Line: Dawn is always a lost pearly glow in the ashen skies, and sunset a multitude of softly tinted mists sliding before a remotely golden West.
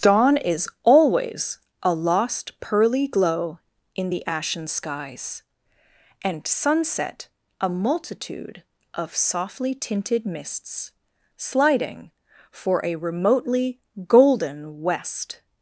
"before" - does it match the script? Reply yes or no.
no